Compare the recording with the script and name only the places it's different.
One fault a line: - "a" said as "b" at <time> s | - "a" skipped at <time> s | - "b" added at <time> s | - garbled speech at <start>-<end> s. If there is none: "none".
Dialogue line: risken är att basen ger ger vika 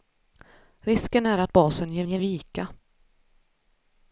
none